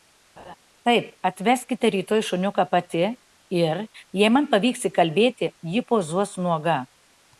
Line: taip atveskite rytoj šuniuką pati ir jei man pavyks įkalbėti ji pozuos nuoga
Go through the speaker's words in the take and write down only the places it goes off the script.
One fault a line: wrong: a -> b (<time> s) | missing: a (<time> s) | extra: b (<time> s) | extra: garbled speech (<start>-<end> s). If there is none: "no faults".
no faults